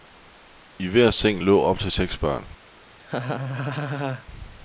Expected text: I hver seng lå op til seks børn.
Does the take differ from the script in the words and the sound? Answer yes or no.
yes